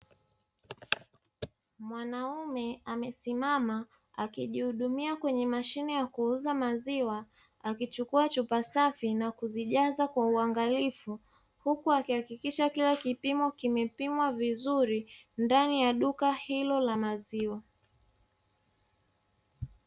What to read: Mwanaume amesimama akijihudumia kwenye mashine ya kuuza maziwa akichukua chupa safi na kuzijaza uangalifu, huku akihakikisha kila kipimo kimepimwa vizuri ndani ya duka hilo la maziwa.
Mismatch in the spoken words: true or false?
true